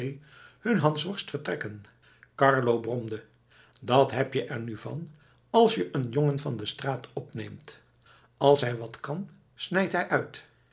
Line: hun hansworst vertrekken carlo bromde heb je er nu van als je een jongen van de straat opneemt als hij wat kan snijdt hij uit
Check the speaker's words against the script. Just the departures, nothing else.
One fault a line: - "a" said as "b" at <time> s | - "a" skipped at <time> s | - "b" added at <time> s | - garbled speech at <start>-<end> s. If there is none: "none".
- "dat" added at 3.8 s